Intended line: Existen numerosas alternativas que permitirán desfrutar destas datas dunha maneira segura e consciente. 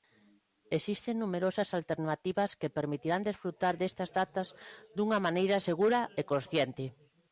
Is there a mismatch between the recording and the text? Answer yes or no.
no